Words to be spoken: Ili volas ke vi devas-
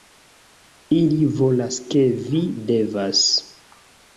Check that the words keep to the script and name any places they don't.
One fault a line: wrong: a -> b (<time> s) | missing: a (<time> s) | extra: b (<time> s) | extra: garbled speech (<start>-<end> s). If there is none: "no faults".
no faults